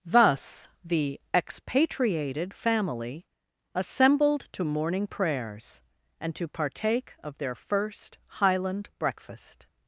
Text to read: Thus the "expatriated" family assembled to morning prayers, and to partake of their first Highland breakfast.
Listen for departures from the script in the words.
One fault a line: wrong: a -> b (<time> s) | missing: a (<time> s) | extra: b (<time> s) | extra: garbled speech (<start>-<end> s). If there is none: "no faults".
no faults